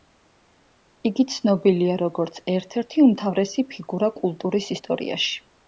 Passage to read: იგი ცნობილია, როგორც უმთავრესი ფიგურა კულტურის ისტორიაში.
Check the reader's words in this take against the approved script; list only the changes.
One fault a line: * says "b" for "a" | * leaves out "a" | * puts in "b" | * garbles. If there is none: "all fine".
* puts in "ერთ ერთი"